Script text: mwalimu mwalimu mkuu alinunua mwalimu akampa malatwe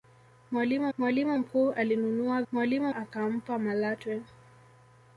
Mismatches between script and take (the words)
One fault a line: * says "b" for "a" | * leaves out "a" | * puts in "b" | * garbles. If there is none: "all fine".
all fine